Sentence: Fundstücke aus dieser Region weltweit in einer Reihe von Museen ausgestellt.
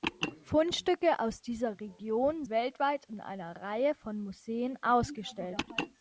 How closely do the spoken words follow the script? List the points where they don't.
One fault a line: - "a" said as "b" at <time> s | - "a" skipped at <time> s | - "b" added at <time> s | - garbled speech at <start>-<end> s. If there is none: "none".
none